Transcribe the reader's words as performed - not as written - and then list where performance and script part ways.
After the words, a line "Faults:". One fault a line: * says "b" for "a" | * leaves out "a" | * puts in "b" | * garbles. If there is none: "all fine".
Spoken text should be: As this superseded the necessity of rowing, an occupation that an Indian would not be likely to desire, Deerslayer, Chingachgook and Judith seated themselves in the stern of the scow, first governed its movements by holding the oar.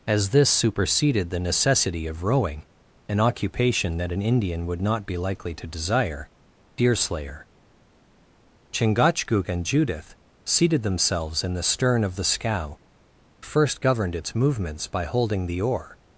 As this superseded the necessity of rowing, an occupation that an Indian would not be likely to desire, Deerslayer, Chingachgook and Judith seated themselves in the stern of the scow, first governed its movements by holding the oar.
Faults:
all fine